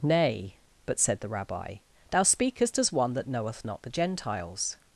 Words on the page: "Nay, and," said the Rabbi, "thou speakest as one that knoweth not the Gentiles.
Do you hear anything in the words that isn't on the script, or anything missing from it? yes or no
yes